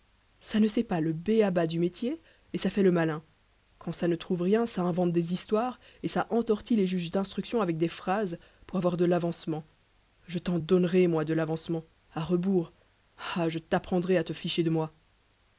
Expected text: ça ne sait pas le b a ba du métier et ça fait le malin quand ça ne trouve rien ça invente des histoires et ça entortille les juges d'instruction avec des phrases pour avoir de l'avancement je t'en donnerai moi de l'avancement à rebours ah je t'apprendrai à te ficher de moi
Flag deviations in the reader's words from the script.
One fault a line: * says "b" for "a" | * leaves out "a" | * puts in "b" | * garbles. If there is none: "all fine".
all fine